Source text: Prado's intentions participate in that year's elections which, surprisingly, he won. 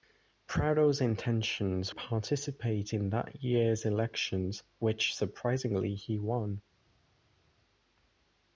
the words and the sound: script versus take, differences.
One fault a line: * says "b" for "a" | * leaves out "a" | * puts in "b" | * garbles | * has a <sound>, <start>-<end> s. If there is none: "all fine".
all fine